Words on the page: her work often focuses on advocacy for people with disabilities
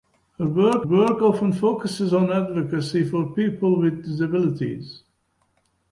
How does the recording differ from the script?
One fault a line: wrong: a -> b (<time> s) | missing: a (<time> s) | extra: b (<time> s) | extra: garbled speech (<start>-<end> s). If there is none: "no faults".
extra: work (0.8 s)